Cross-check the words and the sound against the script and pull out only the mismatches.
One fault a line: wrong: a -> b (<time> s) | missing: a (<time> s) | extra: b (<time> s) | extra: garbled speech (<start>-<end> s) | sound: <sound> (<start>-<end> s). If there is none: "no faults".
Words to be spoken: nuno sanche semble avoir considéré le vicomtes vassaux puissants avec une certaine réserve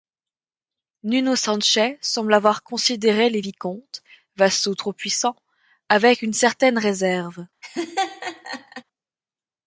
wrong: le -> les (3.3 s)
extra: trop (4.7 s)
sound: laugh (7.6-8.8 s)